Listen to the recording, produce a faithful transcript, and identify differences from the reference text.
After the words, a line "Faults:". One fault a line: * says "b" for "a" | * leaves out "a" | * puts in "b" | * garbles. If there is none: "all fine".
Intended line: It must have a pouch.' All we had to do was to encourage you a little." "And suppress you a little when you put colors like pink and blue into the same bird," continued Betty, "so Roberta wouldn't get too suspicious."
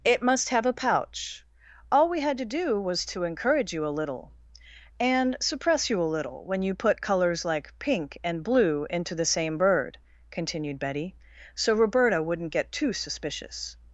It must have a pouch.' All we had to do was to encourage you a little." "And suppress you a little when you put colors like pink and blue into the same bird," continued Betty, "so Roberta wouldn't get too suspicious."
Faults:
all fine